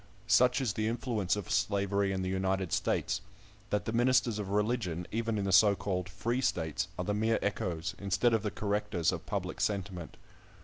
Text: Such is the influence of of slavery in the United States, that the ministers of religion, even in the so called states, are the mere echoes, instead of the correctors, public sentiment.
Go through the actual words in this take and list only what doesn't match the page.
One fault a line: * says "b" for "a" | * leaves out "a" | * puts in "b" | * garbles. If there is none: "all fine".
* leaves out "of"
* puts in "free"
* puts in "of"